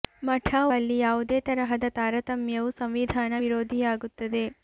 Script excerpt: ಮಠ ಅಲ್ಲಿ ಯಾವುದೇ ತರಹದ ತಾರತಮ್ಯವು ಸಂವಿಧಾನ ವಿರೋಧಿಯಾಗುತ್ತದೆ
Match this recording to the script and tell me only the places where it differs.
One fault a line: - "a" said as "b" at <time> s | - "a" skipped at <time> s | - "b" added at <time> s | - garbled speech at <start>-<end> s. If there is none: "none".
none